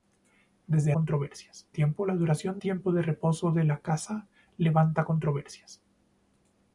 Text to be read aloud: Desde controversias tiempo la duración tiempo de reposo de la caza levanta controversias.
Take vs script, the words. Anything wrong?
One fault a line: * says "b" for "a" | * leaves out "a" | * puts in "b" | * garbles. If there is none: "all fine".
all fine